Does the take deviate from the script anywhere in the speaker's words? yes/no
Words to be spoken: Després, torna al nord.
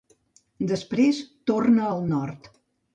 no